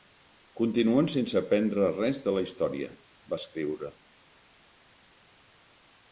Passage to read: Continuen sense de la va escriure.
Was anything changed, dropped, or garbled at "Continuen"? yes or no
no